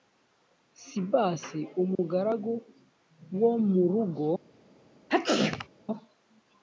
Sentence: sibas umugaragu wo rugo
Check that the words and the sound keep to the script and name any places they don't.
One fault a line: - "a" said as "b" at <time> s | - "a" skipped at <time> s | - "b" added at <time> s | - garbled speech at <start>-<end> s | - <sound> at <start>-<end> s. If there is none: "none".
- dropout at 1.9-2.0 s
- "mu" added at 3.7 s
- sneeze at 5.1-5.7 s